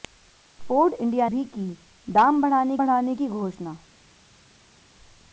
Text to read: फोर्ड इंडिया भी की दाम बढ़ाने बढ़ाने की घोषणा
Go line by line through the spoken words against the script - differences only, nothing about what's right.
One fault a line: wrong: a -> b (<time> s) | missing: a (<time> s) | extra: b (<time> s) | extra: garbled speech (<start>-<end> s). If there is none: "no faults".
no faults